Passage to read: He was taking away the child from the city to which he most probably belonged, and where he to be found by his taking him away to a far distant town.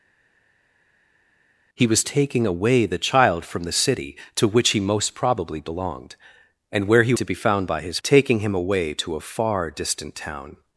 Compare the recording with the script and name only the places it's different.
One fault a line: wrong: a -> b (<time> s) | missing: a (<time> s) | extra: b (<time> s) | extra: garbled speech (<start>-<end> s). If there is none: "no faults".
no faults